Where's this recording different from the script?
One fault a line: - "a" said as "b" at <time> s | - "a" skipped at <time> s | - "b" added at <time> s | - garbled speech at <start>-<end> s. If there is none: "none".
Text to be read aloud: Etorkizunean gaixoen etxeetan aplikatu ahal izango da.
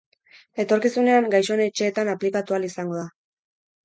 none